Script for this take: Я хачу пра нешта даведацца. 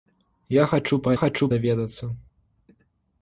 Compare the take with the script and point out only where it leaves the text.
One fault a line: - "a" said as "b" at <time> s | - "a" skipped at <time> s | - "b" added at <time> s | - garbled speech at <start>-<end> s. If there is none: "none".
- "нешта" said as "хачу" at 1.2 s